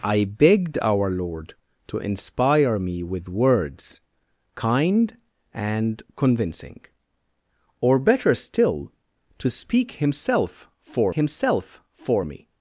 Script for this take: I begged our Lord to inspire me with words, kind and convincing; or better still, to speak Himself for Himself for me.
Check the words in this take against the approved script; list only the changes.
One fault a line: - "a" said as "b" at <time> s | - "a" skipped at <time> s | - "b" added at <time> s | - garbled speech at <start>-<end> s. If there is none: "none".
none